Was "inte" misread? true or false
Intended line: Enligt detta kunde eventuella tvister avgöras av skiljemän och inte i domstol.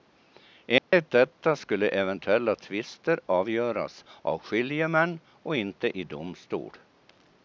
false